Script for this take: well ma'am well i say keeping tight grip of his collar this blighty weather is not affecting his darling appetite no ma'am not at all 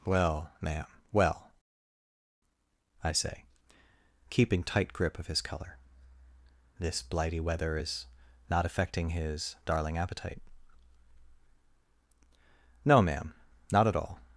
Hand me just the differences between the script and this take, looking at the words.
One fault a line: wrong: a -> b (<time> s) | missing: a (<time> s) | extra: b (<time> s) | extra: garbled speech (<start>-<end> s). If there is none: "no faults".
wrong: collar -> color (5.4 s)